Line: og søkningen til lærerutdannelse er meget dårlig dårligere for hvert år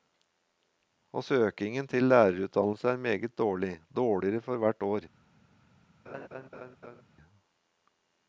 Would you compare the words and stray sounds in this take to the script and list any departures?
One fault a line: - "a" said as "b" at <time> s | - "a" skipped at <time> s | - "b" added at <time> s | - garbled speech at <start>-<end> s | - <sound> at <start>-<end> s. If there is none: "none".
- laugh at 6.1-7.0 s